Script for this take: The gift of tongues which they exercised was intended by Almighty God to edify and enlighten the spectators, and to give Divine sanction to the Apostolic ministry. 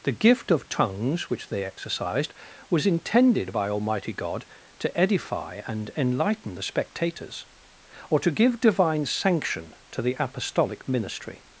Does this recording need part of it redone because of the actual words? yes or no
yes